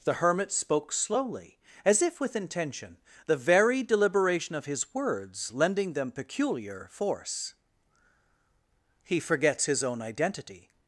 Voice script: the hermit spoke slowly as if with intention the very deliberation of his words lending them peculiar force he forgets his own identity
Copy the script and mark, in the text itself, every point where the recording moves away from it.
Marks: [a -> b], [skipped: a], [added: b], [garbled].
the hermit spoke slowly as if with intention the very deliberation of his words lending them peculiar force he forgets his own identity